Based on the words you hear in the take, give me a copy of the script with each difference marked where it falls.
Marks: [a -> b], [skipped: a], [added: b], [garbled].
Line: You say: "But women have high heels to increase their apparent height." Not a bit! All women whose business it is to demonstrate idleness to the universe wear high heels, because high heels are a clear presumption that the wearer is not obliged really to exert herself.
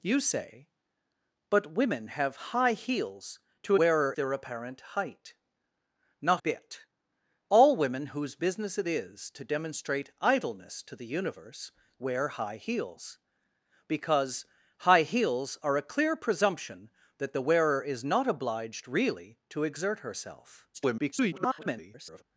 You say: "But women have high heels to [increase -> wearer] their apparent height." Not [skipped: a] bit! All women whose business it is to demonstrate idleness to the universe wear high heels, because high heels are a clear presumption that the wearer is not obliged really to exert herself. [garbled]